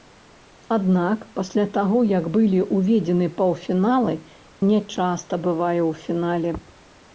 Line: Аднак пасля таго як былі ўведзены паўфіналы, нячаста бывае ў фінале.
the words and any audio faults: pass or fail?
pass